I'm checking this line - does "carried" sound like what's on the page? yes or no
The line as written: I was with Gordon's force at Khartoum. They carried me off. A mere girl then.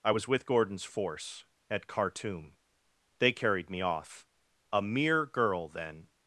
yes